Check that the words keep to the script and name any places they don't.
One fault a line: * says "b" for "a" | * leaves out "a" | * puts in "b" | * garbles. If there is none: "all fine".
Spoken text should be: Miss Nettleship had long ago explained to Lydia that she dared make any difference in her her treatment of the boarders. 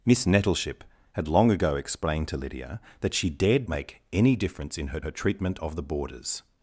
all fine